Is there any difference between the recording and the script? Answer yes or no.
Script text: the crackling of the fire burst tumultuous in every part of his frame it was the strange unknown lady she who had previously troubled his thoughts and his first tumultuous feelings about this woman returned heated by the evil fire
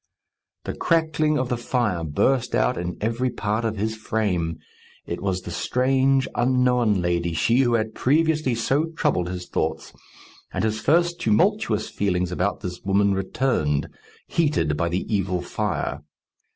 yes